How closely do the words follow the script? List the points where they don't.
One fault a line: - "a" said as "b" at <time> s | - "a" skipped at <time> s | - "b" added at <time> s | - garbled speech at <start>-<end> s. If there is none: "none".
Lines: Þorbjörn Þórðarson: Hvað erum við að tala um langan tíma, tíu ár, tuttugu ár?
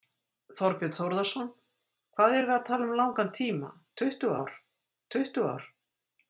- "tíu" said as "tuttugu" at 4.0 s